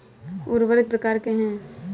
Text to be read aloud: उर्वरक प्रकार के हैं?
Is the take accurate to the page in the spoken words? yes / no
yes